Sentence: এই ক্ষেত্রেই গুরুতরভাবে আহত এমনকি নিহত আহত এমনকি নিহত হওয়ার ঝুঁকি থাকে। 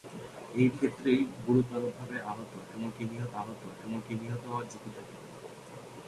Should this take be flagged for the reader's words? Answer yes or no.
no